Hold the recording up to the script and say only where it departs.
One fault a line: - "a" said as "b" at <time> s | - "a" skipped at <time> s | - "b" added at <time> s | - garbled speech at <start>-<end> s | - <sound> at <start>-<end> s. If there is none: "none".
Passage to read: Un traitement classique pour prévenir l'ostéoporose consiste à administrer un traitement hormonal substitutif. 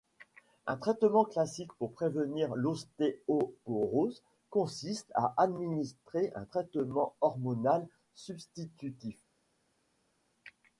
none